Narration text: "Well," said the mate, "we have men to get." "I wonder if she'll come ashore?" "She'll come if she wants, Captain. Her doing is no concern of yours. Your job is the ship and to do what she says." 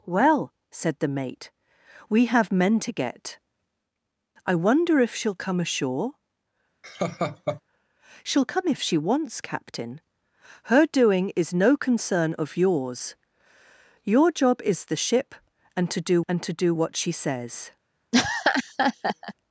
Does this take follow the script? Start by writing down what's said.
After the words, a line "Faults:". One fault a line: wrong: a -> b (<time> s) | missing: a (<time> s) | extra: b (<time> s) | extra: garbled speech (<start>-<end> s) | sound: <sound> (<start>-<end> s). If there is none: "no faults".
"Well," said the mate, "we have men to get." "I wonder if she'll come ashore?" "She'll come if she wants, Captain. Her doing is no concern of yours. Your job is the ship and to do and to do what she says."
Faults:
sound: laugh (6.8-7.6 s)
extra: and to do (16.3 s)
sound: laugh (18.1-19.3 s)